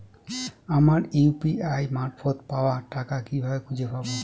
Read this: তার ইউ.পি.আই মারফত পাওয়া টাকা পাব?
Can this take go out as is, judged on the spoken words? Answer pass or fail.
fail